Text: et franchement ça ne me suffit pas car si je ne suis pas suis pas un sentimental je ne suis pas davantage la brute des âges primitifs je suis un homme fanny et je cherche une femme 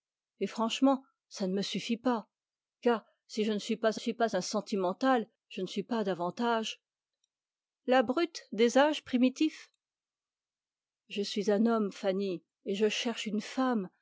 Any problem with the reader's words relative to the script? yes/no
no